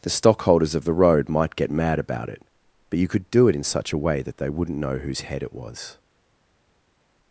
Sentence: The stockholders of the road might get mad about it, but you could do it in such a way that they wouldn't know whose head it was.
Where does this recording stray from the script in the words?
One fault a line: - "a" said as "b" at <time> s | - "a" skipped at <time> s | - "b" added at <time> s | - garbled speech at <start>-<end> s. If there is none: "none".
none